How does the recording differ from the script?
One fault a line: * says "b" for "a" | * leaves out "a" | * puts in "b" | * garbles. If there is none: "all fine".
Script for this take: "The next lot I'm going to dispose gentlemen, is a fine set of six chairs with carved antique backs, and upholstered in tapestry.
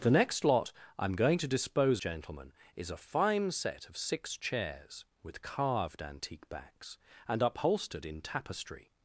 all fine